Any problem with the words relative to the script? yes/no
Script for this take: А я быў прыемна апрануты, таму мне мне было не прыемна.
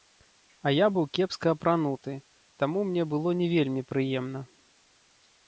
yes